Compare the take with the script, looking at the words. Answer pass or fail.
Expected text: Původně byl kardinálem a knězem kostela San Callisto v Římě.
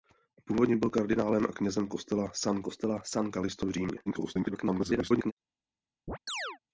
fail